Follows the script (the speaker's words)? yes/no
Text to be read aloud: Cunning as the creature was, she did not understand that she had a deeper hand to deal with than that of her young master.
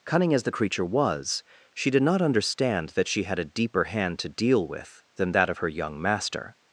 yes